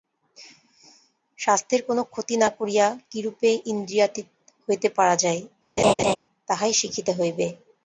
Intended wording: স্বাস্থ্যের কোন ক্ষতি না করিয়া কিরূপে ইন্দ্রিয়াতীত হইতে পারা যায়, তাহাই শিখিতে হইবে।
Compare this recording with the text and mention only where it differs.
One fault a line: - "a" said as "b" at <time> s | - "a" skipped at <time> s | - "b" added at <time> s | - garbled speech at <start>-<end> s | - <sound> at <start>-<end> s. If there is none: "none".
- laugh at 5.8-6.2 s